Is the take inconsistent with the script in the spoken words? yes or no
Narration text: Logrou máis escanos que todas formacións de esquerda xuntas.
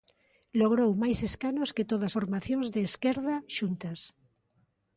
no